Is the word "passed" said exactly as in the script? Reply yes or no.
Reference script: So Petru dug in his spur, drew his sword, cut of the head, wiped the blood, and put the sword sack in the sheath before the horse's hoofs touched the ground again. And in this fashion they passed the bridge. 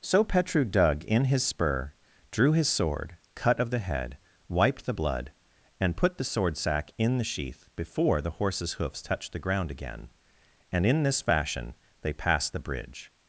yes